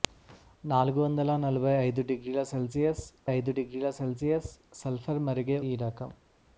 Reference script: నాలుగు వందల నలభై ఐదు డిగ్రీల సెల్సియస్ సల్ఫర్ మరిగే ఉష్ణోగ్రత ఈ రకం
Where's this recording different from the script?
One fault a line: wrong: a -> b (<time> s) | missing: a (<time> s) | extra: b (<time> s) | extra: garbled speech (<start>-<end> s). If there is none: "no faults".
extra: ఐదు డిగ్రీల సెల్సియస్ (3.3 s)
missing: ఉష్ణోగ్రత (5.6 s)